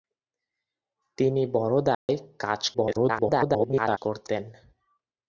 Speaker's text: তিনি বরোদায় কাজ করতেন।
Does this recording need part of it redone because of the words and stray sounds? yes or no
yes